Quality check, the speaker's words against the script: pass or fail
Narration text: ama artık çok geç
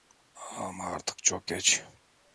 pass